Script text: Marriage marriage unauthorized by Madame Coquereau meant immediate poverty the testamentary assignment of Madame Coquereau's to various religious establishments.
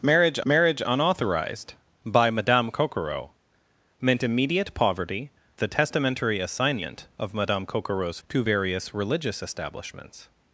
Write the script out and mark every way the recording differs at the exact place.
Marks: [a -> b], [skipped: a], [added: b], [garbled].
Marriage marriage unauthorized by Madame Coquereau meant immediate poverty the testamentary assignment of Madame Coquereau's to various religious establishments.